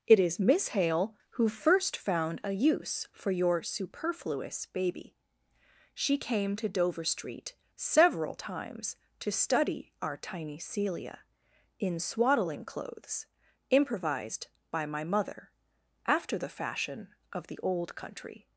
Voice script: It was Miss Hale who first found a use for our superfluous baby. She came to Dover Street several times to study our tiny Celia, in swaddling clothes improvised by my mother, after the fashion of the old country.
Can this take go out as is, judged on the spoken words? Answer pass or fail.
fail